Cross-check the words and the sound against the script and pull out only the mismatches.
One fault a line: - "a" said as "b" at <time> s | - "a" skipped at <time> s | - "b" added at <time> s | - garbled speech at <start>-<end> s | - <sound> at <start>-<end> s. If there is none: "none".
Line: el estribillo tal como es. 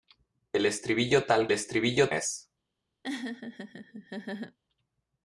- "como" said as "estribillo" at 1.5 s
- laugh at 3.0-4.6 s